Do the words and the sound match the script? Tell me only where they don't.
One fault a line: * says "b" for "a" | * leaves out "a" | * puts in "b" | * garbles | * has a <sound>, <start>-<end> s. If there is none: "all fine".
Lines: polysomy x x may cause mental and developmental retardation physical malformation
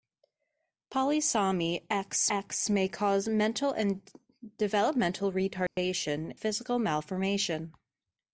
* has a dropout, 5.7-5.8 s